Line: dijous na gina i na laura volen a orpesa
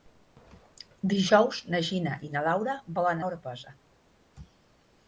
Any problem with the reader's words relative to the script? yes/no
no